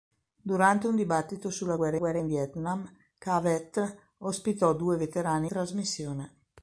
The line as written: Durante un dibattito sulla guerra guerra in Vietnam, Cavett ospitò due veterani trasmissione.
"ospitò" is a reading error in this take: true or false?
false